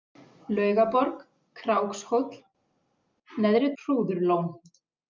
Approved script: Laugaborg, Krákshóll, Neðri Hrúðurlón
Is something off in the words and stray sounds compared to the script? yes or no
no